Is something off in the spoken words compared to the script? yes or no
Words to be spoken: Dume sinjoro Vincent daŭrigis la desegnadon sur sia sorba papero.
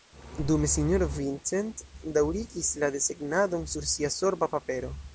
no